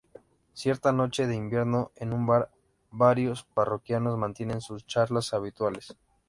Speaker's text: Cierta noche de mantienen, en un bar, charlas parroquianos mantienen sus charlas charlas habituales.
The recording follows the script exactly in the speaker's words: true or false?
false